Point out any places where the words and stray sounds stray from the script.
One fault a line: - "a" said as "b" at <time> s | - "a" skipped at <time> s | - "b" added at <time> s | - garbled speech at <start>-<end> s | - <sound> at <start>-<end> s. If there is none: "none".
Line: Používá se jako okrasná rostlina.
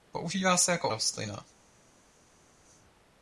- "okrasná" skipped at 0.9 s